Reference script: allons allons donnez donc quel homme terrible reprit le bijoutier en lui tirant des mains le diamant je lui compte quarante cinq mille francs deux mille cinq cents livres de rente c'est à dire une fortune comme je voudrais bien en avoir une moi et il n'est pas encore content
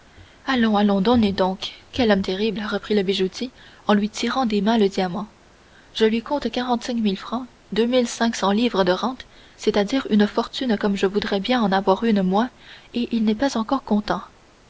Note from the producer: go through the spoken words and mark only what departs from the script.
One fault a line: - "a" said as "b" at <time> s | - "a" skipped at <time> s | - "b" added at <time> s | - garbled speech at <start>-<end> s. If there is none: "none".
none